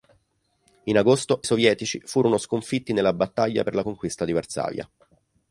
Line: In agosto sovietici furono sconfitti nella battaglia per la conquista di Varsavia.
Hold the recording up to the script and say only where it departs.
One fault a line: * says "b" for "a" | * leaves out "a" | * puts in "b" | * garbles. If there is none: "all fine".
all fine